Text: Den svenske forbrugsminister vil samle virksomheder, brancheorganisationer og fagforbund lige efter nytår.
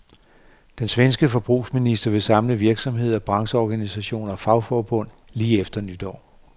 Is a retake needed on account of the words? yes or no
no